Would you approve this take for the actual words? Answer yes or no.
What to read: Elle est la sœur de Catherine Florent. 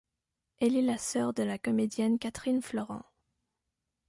no